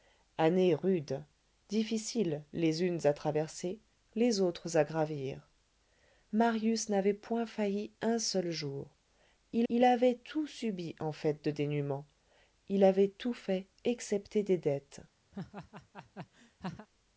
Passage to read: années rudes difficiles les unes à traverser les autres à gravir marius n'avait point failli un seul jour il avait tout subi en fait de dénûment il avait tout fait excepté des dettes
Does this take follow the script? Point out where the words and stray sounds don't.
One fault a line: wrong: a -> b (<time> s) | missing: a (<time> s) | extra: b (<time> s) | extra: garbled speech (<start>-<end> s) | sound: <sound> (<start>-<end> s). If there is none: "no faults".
extra: il (9.7 s)
sound: laugh (15.3-16.9 s)